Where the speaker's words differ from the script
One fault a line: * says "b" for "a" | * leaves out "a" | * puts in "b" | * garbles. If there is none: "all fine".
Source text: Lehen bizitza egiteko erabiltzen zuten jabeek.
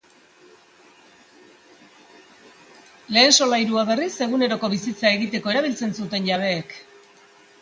* puts in "solairua berriz eguneroko"